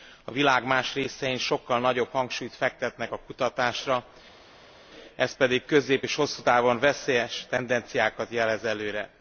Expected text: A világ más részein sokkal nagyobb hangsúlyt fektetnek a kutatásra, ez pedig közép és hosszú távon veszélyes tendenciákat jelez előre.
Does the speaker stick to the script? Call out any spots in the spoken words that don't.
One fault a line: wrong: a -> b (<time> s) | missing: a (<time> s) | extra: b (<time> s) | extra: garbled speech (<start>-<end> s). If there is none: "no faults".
no faults